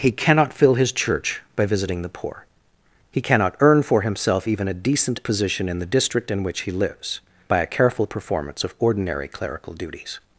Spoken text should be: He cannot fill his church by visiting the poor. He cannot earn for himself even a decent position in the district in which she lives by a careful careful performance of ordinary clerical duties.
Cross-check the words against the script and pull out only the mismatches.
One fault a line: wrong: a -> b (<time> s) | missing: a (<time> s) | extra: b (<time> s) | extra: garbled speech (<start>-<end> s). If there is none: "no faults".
wrong: she -> he (6.6 s)
missing: careful (8.1 s)